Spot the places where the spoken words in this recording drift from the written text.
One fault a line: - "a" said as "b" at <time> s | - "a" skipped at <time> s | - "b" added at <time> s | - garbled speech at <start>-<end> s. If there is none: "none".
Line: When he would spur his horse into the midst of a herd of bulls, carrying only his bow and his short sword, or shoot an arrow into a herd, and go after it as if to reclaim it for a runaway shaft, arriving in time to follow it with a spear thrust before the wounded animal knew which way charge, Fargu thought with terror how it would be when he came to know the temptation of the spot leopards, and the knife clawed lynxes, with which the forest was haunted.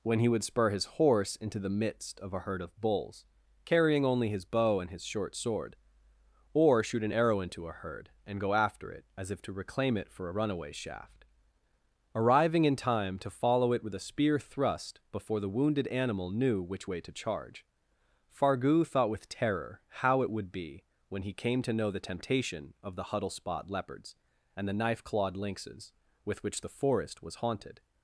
- "to" added at 17.0 s
- "huddle" added at 23.1 s